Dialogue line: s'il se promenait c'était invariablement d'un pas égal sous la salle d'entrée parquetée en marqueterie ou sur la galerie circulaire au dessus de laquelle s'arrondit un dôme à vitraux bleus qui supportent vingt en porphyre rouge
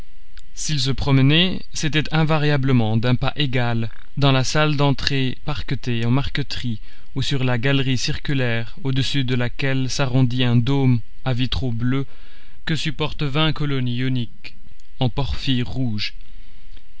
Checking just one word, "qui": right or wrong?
wrong